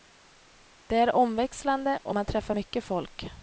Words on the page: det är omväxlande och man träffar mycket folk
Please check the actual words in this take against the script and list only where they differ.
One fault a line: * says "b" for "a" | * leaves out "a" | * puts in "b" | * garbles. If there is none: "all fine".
all fine